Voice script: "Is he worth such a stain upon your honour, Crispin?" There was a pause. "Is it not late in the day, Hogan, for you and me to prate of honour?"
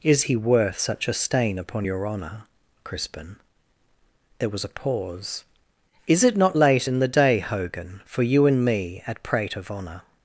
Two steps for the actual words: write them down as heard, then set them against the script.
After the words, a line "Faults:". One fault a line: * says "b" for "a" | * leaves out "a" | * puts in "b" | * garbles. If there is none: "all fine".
"Is he worth such a stain upon your honour, Crispin?" There was a pause. "Is it not late in the day, Hogan, for you and me at prate of honour?"
Faults:
* says "at" for "to"